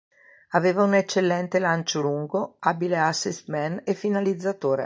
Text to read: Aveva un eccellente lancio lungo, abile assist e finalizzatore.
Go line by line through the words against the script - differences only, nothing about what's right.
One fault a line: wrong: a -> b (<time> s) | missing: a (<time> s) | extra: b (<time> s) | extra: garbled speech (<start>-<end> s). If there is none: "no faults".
extra: man (3.5 s)